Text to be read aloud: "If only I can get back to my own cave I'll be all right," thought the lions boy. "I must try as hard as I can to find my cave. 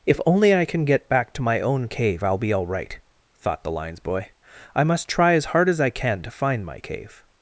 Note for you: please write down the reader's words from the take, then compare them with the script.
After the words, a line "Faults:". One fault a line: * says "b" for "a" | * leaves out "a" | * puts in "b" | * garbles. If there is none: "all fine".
"If only I can get back to my own cave I'll be all right," thought the lions boy. "I must try as hard as I can to find my cave.
Faults:
all fine